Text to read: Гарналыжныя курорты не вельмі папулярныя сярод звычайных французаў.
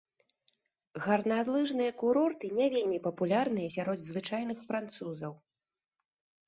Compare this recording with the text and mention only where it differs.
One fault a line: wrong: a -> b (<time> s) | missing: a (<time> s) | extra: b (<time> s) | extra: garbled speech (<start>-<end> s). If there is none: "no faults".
no faults